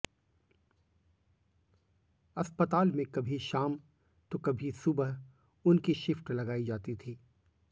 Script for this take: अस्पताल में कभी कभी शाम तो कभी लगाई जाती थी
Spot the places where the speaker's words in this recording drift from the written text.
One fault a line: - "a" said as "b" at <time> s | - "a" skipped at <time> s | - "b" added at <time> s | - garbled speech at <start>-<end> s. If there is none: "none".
- "कभी" skipped at 3.4 s
- "सुबह उनकी शिफ्ट" added at 4.7 s